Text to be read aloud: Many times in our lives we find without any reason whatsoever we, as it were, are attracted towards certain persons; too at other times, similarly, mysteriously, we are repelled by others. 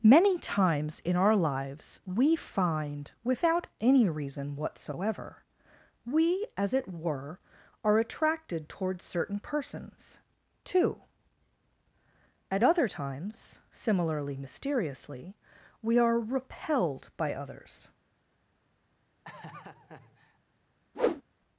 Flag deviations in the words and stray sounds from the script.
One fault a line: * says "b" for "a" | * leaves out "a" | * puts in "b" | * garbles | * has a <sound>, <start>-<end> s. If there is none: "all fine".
* has a laugh, 19.2-20.4 s
* has a whoosh, 20.9-21.2 s